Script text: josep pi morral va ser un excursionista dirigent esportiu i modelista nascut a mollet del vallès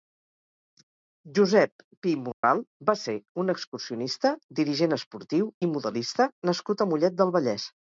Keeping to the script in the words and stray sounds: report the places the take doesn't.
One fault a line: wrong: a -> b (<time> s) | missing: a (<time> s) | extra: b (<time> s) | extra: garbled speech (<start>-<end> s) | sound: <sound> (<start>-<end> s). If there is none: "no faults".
sound: dropout (2.3-2.4 s)